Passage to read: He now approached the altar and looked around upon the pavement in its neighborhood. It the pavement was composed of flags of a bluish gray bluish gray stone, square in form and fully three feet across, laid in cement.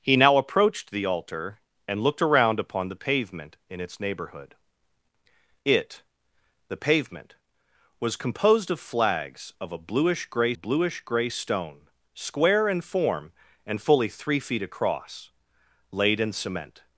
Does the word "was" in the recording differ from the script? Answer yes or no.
no